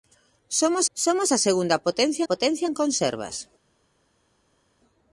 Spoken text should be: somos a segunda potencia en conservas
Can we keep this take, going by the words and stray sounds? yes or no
no